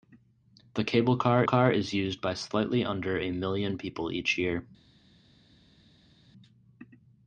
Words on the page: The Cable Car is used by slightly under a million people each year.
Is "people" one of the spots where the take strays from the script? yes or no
no